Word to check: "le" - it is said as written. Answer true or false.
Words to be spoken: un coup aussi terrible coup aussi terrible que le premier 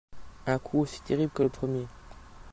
true